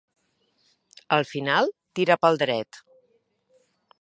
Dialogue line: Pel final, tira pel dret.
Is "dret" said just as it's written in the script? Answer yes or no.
yes